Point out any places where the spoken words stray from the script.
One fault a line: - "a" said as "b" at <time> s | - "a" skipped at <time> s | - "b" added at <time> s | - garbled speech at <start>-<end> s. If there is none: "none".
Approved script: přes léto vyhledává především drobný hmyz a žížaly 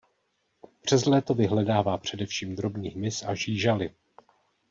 none